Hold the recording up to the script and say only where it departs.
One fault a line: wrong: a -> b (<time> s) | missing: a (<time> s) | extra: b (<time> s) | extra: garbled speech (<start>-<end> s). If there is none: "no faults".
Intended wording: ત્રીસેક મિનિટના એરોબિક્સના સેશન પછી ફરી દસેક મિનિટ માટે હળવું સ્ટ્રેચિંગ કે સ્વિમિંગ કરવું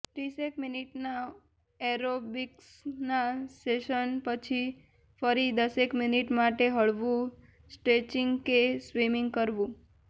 no faults